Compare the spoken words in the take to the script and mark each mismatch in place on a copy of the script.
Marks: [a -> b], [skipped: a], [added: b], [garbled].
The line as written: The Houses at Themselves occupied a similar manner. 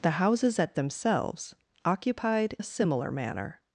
The Houses at Themselves occupied a similar manner.